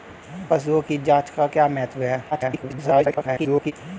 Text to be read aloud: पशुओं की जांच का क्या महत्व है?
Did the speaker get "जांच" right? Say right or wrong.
right